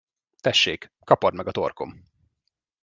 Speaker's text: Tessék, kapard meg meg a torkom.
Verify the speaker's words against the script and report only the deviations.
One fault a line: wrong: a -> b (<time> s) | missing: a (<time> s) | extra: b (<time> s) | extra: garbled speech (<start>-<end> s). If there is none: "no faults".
missing: meg (1.5 s)